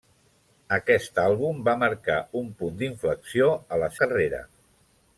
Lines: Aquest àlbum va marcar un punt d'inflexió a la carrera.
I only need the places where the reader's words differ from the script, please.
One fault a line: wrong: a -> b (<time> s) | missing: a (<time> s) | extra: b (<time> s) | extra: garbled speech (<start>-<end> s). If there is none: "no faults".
no faults